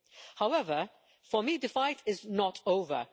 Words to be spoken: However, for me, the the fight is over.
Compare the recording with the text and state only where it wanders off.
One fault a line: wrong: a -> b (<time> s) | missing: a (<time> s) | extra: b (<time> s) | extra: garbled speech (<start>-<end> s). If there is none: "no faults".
missing: the (1.7 s)
extra: not (2.2 s)